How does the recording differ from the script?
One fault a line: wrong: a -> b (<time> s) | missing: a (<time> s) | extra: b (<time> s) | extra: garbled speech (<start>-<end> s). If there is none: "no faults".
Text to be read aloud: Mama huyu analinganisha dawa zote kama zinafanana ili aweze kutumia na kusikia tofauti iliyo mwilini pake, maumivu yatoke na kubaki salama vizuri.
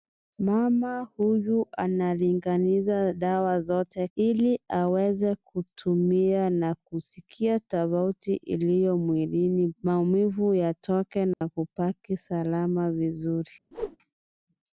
missing: kama zinafanana (4.1 s)
missing: pake (9.7 s)